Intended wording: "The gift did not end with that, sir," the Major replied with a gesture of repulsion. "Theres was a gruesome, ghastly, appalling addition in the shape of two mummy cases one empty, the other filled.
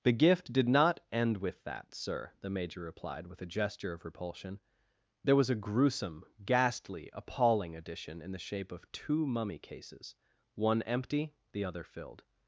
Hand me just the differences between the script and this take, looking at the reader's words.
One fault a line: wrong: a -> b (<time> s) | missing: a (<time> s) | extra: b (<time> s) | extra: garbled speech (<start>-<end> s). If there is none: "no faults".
wrong: Theres -> There (5.2 s)